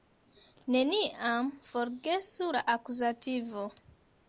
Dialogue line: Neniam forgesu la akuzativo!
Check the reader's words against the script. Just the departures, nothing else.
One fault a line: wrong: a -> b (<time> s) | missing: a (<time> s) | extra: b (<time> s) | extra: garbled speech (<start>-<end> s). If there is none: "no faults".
no faults